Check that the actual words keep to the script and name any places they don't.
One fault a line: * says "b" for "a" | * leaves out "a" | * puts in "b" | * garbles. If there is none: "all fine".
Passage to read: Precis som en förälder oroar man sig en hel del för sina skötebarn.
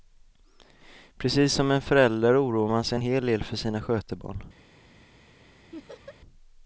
all fine